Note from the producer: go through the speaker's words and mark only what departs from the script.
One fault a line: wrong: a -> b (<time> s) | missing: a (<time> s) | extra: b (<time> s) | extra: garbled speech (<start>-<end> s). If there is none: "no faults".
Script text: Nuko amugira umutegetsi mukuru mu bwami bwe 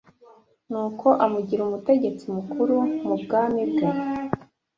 no faults